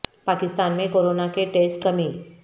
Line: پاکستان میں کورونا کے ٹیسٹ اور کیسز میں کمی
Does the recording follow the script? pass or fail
fail